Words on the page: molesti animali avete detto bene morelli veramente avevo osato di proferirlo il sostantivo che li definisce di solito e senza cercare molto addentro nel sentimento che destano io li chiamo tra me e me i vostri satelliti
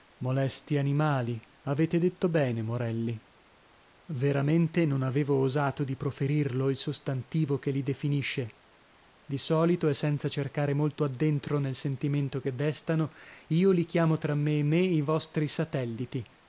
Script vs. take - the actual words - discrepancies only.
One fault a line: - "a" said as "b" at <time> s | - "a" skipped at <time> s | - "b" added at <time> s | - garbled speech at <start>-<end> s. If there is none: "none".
- "non" added at 4.8 s